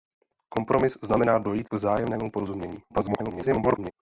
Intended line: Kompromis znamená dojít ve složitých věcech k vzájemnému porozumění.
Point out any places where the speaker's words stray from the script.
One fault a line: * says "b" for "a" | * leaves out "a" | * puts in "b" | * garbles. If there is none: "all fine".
* leaves out "ve složitých věcech"
* garbles